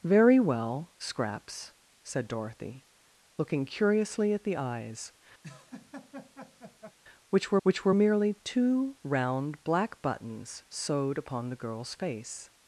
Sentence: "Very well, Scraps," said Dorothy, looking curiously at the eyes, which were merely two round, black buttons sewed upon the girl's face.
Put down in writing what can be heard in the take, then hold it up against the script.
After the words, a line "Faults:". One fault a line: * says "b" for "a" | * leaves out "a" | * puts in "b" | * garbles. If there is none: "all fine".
"Very well, Scraps," said Dorothy, looking curiously at the eyes, which were which were merely two round, black buttons sewed upon the girl's face.
Faults:
* puts in "which were"